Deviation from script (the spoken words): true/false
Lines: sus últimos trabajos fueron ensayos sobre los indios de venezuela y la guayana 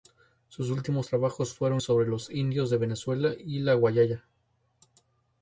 true